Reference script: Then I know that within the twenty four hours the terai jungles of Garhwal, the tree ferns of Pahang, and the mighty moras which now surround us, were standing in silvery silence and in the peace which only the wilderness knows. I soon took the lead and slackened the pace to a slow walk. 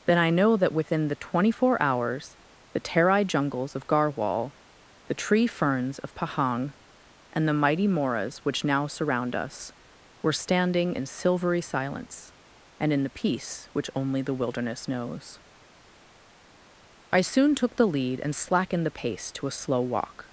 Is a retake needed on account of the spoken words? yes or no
no